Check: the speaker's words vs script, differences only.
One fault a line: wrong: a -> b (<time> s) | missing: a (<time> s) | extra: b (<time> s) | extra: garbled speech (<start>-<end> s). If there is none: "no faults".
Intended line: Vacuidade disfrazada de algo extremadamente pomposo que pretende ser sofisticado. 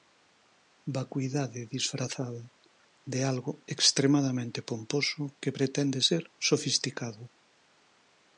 no faults